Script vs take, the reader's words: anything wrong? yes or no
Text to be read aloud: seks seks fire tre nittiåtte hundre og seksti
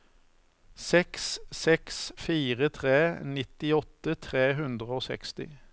yes